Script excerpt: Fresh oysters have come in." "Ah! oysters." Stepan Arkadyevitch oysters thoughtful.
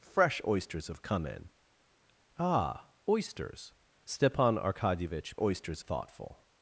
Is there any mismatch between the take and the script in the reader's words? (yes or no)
no